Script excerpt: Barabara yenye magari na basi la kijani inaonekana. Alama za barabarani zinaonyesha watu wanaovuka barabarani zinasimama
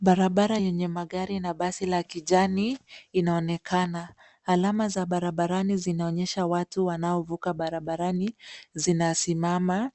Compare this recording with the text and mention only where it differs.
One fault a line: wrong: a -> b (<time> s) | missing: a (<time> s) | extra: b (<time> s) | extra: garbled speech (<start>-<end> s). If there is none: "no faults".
no faults